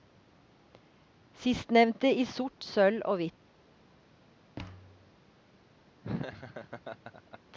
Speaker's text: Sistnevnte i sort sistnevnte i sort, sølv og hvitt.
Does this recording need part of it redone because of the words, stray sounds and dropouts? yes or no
yes